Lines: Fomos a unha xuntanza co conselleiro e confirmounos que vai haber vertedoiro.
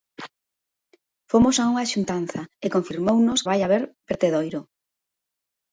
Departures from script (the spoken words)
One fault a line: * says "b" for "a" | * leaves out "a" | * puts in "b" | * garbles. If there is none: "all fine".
* leaves out "co conselleiro"
* leaves out "que"